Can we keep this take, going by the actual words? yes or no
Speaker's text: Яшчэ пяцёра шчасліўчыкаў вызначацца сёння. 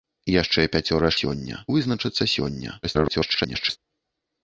no